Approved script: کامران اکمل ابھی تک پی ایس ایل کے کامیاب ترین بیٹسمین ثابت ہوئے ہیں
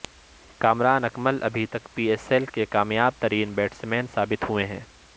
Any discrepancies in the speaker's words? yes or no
no